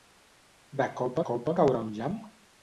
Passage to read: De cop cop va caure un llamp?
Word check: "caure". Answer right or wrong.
right